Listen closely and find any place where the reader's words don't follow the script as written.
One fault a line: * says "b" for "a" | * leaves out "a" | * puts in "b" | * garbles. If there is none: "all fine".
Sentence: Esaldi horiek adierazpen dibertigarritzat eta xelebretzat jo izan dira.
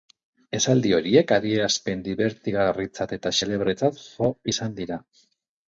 all fine